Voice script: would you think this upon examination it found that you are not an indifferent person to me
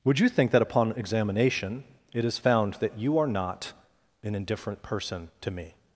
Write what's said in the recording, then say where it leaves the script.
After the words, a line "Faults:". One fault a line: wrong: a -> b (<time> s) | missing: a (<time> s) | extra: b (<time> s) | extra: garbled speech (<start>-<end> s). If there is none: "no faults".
would you think that upon examination it is found that you are not an indifferent person to me
Faults:
wrong: this -> that (0.5 s)
extra: is (2.2 s)